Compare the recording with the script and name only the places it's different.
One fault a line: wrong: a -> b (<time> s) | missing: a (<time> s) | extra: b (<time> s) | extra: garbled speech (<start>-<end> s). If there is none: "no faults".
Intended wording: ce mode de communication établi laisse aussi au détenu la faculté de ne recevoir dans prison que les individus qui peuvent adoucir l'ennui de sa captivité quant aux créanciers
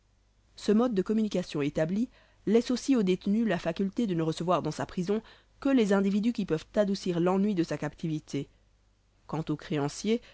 extra: sa (4.7 s)